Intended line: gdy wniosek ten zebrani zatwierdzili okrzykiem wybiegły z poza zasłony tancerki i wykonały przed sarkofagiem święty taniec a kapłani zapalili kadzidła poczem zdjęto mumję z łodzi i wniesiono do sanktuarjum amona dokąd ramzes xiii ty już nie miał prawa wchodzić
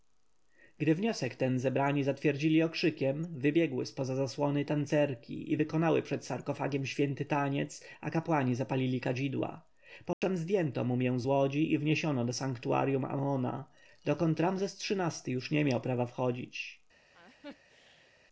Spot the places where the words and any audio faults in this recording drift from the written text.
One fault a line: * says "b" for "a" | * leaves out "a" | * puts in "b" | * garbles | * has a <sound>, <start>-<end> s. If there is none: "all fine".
* has a dropout, 10.1-10.2 s
* has a laugh, 17.1-18.1 s